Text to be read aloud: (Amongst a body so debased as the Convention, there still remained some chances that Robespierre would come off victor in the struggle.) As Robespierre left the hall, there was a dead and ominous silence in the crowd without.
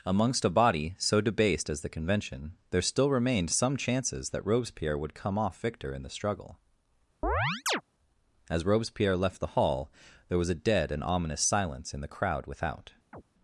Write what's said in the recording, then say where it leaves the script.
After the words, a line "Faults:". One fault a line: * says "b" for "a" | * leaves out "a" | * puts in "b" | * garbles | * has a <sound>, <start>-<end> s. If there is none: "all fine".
(Amongst a body so debased as the Convention, there still remained some chances that Robespierre would come off victor in the struggle.) As Robespierre left the hall, there was a dead and ominous silence in the crowd without.
Faults:
* has a chirp, 7.2-7.8 s
* has a chirp, 13.1-13.2 s